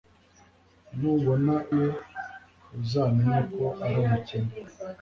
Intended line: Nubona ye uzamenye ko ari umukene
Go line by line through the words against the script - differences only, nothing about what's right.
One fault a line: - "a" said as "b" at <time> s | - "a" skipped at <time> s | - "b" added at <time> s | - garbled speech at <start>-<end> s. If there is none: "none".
none